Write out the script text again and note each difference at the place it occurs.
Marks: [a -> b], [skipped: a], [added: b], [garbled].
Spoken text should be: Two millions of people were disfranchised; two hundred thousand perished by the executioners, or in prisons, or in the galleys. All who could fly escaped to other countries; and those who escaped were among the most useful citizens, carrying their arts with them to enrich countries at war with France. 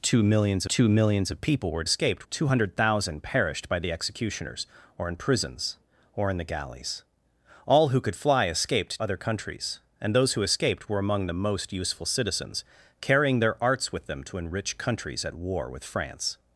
Two millions [added: two millions] of people were [disfranchised; -> escaped] two hundred thousand perished by the executioners, or in prisons, or in the galleys. All who could fly escaped [skipped: to] other countries; and those who escaped were among the most useful citizens, carrying their arts with them to enrich countries at war with France.